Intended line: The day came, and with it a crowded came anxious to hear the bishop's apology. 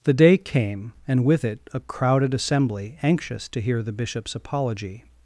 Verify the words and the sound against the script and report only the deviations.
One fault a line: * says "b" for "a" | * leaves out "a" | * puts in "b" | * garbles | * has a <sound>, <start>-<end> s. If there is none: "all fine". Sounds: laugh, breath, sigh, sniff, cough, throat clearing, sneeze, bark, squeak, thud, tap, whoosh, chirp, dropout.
* says "assembly" for "came"